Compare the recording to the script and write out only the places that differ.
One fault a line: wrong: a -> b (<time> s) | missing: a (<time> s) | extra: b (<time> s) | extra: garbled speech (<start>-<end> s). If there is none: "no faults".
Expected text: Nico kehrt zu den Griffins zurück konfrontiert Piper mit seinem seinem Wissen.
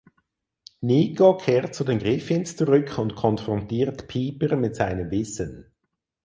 extra: und (3.0 s)
missing: seinem (5.1 s)